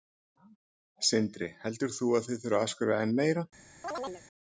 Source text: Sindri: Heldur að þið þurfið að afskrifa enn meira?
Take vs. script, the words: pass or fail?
fail